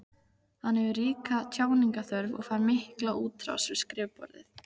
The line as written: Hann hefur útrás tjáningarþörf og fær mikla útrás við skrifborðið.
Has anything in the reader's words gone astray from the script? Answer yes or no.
yes